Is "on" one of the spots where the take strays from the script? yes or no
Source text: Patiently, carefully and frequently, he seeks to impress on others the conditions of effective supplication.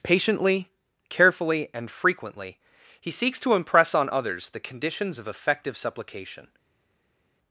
no